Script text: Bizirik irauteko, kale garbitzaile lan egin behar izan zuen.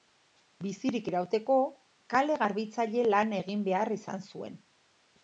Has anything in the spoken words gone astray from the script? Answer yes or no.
no